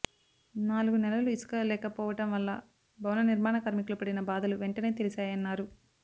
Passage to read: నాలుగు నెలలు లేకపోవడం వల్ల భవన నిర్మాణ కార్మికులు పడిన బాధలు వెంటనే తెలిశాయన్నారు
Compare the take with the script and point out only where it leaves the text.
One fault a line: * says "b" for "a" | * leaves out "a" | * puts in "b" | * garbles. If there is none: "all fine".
* puts in "ఇసుక"